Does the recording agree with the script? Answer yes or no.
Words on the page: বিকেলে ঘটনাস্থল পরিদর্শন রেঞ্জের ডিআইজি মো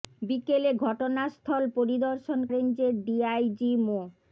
yes